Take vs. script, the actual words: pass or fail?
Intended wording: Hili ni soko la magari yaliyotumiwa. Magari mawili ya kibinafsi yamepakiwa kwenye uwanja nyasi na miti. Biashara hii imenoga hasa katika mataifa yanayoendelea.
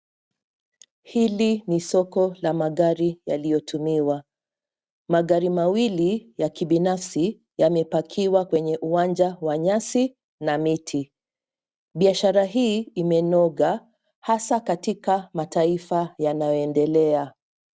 fail